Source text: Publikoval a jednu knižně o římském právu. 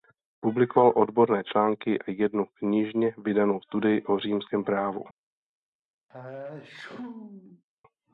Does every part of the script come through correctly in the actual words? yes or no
no